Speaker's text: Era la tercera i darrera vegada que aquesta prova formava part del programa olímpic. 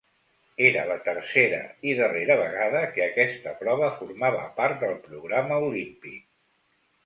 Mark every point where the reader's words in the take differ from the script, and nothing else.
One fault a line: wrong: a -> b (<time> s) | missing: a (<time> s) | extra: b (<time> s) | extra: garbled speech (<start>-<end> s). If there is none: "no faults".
no faults